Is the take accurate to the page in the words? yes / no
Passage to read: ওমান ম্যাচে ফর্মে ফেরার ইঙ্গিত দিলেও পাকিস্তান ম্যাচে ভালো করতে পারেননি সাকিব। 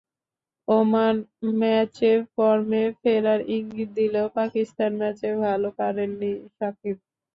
no